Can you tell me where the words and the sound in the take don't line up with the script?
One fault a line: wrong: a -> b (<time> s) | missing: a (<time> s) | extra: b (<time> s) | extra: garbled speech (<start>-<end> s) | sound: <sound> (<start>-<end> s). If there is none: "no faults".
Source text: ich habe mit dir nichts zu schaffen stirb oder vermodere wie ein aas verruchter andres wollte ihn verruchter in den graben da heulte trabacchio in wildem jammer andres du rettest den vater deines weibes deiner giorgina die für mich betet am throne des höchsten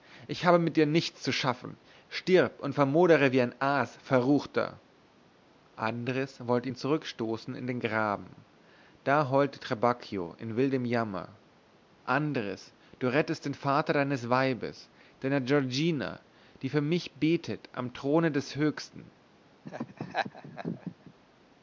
wrong: oder -> und (2.6 s)
wrong: verruchter -> zurückstoßen (6.8 s)
sound: laugh (19.6-21.1 s)